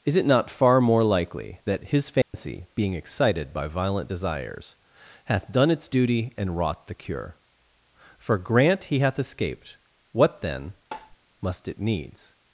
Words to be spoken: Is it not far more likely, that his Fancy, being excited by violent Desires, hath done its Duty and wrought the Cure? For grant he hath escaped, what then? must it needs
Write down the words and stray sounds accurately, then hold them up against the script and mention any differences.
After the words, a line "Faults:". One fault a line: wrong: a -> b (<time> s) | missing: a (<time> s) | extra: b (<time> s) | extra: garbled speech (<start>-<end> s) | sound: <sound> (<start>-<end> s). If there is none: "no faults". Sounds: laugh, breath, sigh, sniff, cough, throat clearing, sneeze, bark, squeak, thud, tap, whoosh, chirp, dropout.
Is it not far more likely, that his Fancy, being excited by violent Desires, hath done its Duty and wrought the Cure? For grant he hath escaped, what then? must it needs
Faults:
sound: dropout (2.2-2.3 s)
sound: tap (10.9-11.2 s)